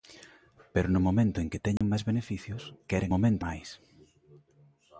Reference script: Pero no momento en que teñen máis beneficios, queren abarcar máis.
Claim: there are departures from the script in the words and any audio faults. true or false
true